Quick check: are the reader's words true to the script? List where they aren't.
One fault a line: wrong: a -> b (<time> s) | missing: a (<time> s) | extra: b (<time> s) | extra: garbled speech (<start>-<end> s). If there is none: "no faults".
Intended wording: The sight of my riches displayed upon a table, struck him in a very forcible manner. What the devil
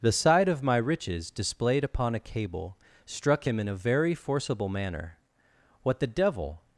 wrong: table -> cable (2.2 s)